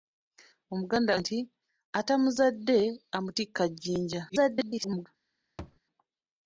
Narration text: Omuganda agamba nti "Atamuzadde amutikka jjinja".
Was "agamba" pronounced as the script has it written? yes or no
no